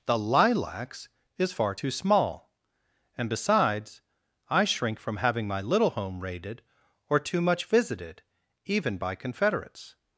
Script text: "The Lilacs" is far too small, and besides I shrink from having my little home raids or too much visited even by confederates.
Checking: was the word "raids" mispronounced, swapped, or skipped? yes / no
yes